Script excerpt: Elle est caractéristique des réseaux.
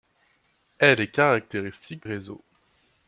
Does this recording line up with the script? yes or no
no